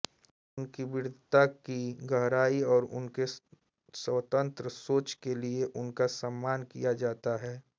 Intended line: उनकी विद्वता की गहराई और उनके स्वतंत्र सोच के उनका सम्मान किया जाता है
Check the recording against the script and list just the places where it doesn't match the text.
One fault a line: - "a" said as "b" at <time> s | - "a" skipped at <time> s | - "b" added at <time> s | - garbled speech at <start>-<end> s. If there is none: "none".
- "लिए" added at 5.3 s